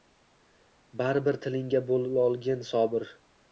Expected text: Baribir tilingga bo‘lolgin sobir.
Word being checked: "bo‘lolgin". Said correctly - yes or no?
yes